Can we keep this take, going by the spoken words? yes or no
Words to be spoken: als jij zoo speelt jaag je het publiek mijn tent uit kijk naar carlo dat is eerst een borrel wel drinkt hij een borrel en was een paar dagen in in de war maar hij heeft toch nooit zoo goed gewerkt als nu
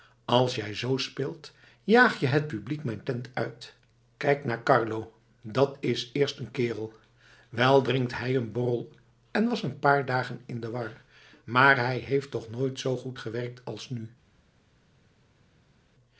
no